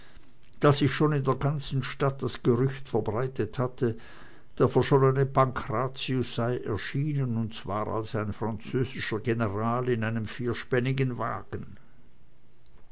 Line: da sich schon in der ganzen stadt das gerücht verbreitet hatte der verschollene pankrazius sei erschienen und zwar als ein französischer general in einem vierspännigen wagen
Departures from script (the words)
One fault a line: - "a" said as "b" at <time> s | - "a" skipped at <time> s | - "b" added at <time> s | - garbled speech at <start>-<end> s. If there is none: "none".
none